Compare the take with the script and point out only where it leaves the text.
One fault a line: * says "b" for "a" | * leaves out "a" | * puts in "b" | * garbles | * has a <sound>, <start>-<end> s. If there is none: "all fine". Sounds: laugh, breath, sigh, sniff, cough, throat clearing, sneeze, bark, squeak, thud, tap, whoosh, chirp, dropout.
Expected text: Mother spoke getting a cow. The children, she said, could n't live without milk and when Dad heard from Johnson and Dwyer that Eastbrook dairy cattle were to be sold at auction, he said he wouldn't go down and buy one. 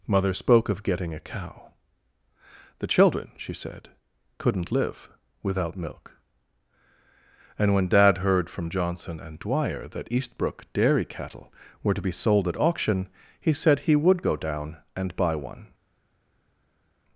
* puts in "of"
* says "would" for "wouldn't"